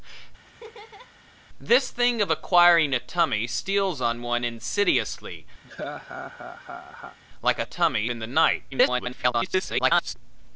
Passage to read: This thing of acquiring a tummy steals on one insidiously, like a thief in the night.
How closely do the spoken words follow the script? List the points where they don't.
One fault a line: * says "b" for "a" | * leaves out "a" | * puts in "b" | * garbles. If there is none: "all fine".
* says "tummy" for "thief"
* garbles